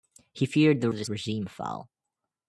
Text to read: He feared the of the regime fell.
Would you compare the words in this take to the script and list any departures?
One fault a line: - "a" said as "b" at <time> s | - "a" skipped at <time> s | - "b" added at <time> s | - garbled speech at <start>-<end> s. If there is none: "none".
none